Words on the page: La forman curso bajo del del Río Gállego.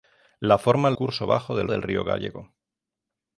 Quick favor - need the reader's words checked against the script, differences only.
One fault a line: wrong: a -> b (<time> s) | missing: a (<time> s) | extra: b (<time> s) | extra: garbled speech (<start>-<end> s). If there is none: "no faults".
no faults